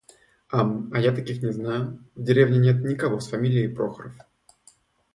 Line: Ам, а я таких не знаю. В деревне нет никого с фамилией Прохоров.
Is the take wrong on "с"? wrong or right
right